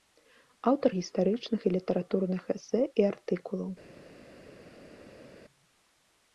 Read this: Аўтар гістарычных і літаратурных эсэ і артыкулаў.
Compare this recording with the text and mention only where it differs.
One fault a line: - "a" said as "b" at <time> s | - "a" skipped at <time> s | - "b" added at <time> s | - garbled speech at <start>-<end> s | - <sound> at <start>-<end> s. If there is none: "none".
none